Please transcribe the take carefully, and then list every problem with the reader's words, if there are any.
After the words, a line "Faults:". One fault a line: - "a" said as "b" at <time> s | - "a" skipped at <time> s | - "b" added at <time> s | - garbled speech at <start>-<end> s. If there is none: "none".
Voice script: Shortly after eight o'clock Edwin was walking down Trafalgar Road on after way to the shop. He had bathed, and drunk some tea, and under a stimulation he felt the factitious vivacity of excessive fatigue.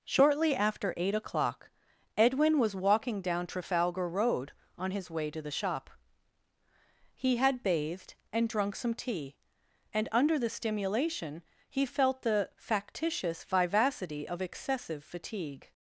Shortly after eight o'clock Edwin was walking down Trafalgar Road on his way to the shop. He had bathed, and drunk some tea, and under the stimulation he felt the factitious vivacity of excessive fatigue.
Faults:
- "after" said as "his" at 4.9 s
- "a" said as "the" at 10.4 s